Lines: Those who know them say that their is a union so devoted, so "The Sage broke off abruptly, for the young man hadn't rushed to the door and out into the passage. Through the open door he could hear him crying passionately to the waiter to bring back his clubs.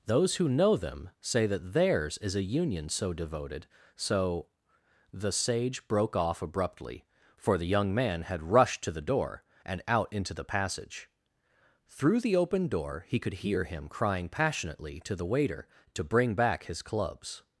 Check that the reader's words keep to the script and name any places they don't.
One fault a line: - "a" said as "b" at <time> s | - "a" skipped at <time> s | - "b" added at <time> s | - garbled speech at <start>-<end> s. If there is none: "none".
- "their" said as "theirs" at 1.7 s
- "hadn't" said as "had" at 8.2 s